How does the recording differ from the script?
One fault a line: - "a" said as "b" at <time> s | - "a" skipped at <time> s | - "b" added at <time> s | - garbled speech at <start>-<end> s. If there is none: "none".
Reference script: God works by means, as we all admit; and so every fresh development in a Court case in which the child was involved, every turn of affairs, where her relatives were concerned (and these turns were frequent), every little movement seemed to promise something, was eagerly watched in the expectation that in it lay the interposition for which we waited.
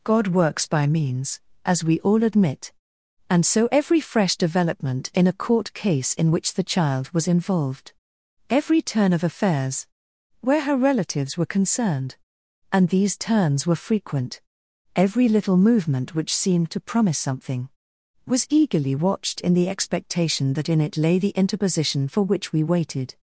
- "which" added at 16.2 s